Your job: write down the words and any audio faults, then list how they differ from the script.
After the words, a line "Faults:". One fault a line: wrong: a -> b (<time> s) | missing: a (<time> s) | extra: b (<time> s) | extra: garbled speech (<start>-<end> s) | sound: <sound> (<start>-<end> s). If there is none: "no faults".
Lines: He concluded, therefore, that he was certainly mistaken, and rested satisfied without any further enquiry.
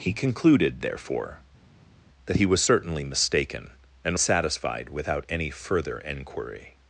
He concluded, therefore, that he was certainly mistaken, and satisfied without any further enquiry.
Faults:
missing: rested (4.2 s)